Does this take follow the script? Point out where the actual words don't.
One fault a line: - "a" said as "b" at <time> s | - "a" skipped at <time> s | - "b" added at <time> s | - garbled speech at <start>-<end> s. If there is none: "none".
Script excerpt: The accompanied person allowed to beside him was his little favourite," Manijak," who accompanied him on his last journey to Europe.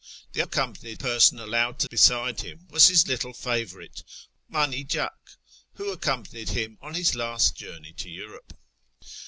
none